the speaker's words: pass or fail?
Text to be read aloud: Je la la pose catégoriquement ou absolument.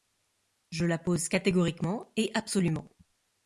fail